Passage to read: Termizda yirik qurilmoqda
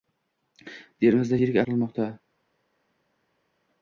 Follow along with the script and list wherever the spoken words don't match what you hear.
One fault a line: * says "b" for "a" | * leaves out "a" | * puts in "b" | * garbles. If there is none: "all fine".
all fine